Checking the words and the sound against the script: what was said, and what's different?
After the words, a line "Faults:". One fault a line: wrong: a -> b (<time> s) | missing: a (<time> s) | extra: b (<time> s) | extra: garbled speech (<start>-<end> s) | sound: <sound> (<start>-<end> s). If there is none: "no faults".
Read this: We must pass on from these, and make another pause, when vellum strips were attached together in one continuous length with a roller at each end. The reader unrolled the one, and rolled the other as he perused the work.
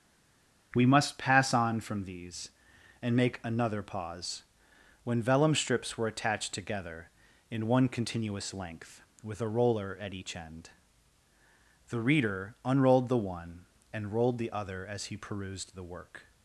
We must pass on from these, and make another pause, when vellum strips were attached together in one continuous length with a roller at each end. The reader unrolled the one, and rolled the other as he perused the work.
Faults:
no faults